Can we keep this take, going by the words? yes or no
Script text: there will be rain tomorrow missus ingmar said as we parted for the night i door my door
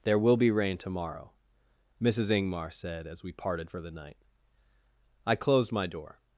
no